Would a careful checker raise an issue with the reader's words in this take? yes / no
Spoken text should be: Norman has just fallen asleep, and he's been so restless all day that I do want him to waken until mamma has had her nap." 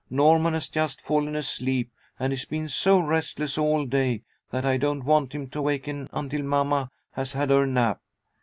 yes